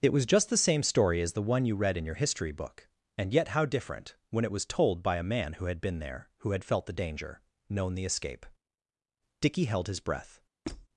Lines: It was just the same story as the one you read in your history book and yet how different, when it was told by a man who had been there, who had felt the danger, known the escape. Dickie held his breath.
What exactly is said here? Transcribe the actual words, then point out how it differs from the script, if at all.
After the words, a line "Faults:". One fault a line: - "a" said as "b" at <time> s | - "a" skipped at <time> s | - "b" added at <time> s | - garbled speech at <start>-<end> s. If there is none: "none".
It was just the same story as the one you read in your history book and yet how different, when it was told by a man who had been there, who had felt the danger, known the escape. Dickie held his breath.
Faults:
none